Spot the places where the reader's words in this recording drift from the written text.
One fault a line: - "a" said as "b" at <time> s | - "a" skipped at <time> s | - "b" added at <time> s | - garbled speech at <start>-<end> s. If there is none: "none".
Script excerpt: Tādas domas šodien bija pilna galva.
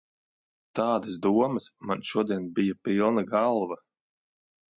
- "man" added at 1.9 s